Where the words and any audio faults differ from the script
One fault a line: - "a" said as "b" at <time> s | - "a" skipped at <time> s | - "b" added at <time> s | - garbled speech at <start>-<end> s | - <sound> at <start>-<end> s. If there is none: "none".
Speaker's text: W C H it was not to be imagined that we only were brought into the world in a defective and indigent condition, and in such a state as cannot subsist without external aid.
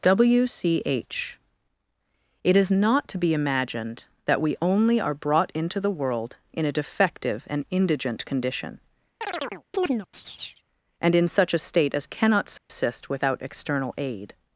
- "was" said as "is" at 2.6 s
- "were" said as "are" at 5.0 s
- chirp at 9.2-10.6 s
- dropout at 12.6-12.7 s